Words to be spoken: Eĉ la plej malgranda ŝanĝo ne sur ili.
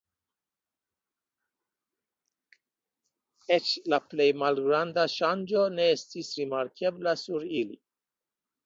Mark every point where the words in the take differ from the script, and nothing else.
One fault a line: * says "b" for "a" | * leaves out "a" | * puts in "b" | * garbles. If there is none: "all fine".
* puts in "estis rimarkebla"